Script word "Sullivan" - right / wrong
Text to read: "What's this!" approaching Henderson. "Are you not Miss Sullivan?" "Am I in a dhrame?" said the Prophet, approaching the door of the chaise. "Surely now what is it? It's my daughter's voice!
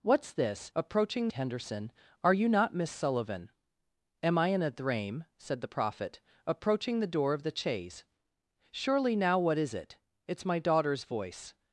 right